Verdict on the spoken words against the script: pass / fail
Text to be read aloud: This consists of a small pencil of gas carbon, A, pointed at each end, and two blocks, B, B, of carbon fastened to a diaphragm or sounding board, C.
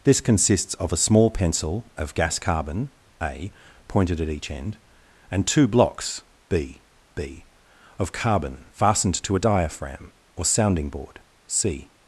pass